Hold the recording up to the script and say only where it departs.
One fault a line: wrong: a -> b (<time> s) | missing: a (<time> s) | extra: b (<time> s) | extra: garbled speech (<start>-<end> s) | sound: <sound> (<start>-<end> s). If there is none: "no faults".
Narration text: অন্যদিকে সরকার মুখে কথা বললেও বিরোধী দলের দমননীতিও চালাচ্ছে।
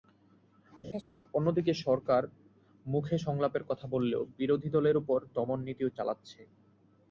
sound: laugh (0.8-1.0 s)
extra: সংলাপের (3.3 s)
extra: ওপর (5.0 s)